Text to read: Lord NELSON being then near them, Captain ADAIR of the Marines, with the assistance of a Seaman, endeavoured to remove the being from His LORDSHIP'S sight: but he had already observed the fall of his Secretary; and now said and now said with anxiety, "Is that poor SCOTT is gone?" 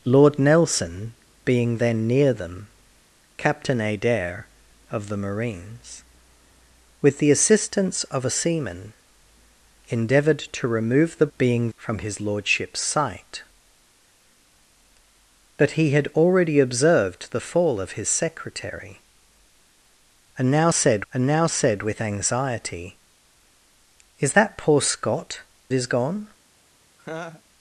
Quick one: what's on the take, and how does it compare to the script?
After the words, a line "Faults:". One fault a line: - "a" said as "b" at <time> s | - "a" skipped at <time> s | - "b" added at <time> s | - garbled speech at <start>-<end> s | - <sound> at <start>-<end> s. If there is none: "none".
Lord NELSON being then near them, Captain ADAIR of the Marines, with the assistance of a Seaman, endeavoured to remove the being from His LORDSHIP'S sight: but he had already observed the fall of his Secretary; and now said and now said with anxiety, "Is that poor SCOTT is gone?"
Faults:
- laugh at 27.0-27.4 s